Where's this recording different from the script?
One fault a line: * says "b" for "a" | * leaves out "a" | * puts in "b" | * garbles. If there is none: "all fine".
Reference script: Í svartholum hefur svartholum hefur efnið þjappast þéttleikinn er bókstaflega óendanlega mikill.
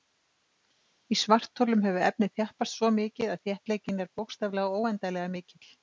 * says "efnið þjappast svo mikið að" for "svartholum hefur efnið þjappast"